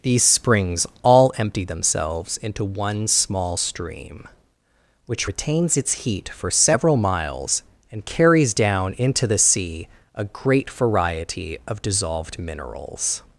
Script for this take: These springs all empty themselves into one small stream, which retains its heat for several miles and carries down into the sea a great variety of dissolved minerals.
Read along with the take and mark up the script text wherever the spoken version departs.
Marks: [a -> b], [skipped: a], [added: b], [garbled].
These springs all empty themselves into one small stream, which retains its heat for several miles and carries down into the sea a great variety of dissolved minerals.